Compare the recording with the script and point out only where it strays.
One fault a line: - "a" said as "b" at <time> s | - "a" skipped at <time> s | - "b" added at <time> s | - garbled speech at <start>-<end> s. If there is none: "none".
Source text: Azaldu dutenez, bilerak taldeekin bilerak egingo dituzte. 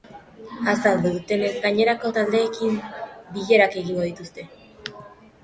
- "bilerak" said as "gainerako" at 1.6 s